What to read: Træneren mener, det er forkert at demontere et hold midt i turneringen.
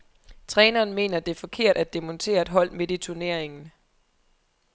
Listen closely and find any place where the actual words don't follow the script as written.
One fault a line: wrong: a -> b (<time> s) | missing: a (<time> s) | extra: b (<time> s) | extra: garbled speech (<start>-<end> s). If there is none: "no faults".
no faults